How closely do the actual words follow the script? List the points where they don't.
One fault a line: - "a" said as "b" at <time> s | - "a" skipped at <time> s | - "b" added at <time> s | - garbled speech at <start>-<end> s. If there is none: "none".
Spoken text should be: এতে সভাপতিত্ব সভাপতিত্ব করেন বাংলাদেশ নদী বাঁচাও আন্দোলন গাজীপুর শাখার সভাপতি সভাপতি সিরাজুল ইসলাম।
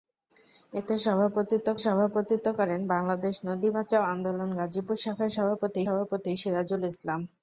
none